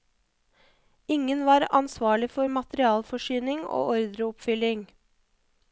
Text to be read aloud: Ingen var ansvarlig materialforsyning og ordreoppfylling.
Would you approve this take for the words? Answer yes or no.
no